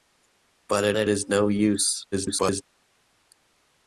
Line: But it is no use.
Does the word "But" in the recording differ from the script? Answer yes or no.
no